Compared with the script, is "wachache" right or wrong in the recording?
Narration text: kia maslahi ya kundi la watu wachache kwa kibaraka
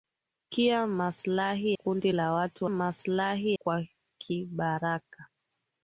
wrong